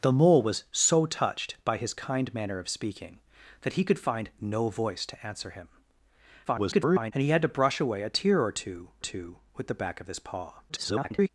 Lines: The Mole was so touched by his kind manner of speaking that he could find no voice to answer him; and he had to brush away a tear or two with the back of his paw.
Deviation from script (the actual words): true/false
true